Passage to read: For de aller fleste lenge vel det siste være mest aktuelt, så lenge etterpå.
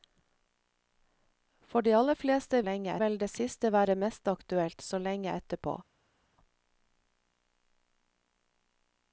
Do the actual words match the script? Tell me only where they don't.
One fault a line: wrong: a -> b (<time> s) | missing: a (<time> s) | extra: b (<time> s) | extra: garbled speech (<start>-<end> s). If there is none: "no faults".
no faults